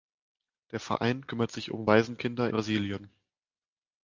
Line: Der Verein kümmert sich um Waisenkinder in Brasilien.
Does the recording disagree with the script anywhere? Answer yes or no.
yes